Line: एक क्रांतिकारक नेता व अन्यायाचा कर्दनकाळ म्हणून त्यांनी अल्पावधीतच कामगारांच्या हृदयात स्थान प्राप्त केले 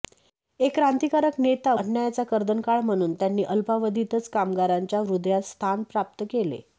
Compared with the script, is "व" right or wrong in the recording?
wrong